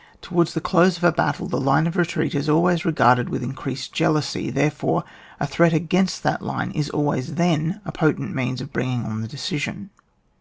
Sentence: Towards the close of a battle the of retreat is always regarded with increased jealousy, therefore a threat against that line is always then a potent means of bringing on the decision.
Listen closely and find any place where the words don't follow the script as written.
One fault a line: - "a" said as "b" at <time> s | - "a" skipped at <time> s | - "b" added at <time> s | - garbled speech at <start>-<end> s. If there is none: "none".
- "line" added at 1.6 s